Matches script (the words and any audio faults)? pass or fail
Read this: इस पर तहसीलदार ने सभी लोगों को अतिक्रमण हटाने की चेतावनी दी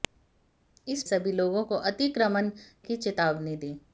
fail